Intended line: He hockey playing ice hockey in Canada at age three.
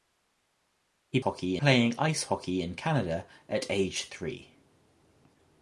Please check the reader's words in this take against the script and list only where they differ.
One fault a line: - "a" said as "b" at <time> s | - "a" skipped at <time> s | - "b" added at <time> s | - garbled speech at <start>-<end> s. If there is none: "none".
none